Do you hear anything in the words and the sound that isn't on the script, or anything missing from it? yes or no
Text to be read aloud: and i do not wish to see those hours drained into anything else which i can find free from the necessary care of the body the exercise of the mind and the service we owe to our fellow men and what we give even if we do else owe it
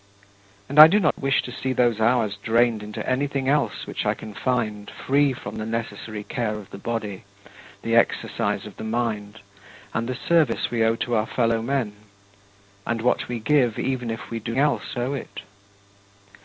yes